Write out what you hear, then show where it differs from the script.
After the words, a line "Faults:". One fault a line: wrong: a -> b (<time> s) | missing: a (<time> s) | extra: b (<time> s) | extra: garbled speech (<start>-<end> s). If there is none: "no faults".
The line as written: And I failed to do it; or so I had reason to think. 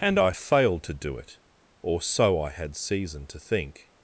And I failed to do it; or so I had season to think.
Faults:
wrong: reason -> season (2.7 s)